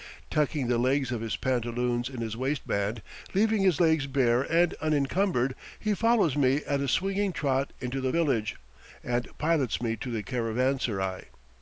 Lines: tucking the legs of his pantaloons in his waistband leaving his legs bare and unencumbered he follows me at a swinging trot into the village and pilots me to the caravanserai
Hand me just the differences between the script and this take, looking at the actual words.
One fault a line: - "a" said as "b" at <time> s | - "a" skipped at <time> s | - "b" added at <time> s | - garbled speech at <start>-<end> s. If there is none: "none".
none